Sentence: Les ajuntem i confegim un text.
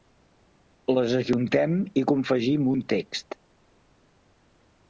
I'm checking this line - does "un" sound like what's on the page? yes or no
yes